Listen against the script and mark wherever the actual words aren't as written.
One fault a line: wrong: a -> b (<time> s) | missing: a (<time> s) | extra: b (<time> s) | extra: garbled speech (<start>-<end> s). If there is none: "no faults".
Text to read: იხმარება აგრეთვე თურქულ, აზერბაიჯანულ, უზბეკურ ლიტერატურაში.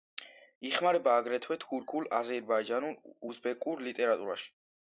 no faults